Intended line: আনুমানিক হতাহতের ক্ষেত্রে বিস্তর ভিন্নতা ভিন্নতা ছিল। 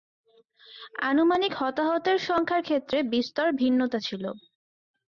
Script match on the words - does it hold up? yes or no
no